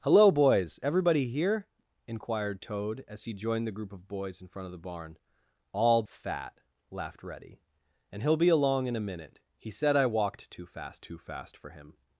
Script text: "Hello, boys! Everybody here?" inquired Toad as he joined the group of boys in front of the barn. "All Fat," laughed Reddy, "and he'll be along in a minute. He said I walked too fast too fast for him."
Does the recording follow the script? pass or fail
pass